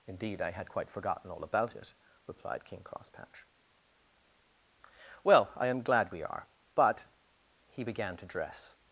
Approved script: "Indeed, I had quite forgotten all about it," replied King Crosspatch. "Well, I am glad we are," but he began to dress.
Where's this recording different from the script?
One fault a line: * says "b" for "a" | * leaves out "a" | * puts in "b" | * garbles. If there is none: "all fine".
all fine